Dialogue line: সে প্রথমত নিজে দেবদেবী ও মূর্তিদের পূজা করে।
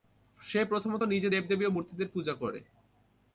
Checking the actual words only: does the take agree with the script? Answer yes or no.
yes